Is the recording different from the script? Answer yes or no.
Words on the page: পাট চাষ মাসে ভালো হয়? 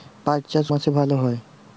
no